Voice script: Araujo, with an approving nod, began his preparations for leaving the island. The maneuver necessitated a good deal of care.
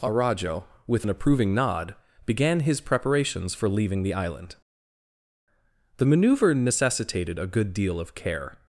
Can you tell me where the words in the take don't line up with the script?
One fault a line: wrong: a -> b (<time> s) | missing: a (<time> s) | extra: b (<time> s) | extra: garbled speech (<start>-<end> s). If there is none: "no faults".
no faults